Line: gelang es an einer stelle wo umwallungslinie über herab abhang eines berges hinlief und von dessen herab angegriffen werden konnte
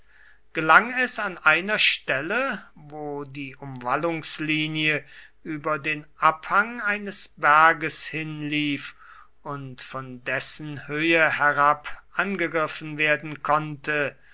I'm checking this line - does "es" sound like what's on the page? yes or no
yes